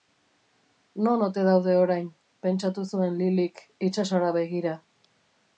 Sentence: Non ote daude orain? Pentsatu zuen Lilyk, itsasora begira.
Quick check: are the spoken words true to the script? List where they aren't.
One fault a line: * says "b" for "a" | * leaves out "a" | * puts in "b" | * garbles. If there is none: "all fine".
all fine